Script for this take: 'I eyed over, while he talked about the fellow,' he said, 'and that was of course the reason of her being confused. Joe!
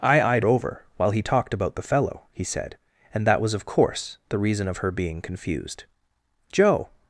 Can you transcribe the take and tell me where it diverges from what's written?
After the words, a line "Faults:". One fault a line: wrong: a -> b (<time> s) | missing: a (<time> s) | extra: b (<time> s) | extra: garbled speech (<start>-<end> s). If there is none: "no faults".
'I eyed over, while he talked about the fellow,' he said, 'and that was of course the reason of her being confused. Joe!
Faults:
no faults